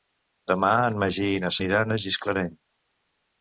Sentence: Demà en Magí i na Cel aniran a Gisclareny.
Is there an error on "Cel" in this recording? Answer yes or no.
yes